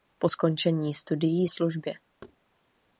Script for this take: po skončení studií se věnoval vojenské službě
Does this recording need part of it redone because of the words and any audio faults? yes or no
yes